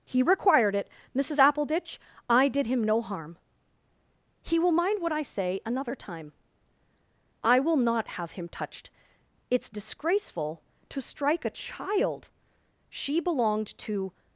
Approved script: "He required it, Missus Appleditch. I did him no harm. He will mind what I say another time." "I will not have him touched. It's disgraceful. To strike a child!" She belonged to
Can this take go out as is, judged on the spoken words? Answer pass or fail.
pass